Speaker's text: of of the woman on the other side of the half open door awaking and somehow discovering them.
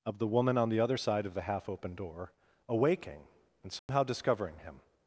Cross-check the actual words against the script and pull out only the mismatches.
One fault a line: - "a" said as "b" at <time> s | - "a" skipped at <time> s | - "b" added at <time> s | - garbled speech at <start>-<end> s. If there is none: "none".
- "of" skipped at 0.2 s
- "them" said as "him" at 4.6 s